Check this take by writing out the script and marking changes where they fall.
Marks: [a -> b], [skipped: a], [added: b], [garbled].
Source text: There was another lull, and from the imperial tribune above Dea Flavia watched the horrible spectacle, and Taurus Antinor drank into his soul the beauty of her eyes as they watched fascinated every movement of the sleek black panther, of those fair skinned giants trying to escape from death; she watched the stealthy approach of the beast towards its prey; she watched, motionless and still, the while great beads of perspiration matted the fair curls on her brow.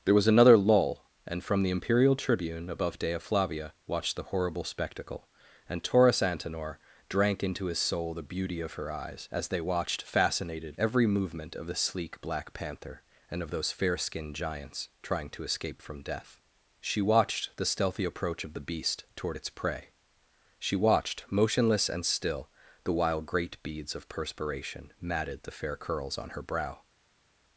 There was another lull, and from the imperial tribune above Dea Flavia watched the horrible spectacle, and Taurus Antinor drank into his soul the beauty of her eyes as they watched fascinated every movement of the sleek black panther, [added: and] of those fair skinned giants trying to escape from death; she watched the stealthy approach of the beast [towards -> toward] its prey; she watched, motionless and still, the while great beads of perspiration matted the fair curls on her brow.